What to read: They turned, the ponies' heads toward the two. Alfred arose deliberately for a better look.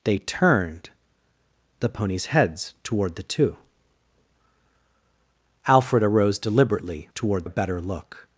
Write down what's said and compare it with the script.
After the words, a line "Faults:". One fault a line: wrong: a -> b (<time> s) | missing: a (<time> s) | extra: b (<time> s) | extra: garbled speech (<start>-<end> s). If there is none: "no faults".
They turned, the ponies' heads toward the two. Alfred arose deliberately toward a better look.
Faults:
wrong: for -> toward (7.1 s)